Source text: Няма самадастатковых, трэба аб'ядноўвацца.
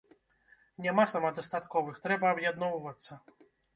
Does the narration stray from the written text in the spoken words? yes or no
no